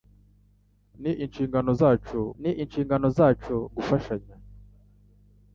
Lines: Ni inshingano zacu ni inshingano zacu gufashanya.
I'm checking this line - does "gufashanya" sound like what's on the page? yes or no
yes